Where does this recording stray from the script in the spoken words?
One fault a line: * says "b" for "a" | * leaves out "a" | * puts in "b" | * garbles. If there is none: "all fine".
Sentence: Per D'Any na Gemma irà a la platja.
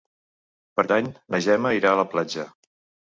all fine